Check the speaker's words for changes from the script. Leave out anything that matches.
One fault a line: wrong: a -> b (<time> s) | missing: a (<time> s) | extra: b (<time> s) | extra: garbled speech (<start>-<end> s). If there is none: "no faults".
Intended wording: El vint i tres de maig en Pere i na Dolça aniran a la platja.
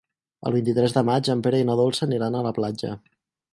no faults